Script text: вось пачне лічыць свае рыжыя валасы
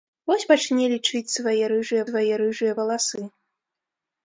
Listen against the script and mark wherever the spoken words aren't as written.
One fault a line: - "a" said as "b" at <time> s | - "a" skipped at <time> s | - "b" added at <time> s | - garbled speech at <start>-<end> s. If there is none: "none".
- "свае рыжыя" added at 2.1 s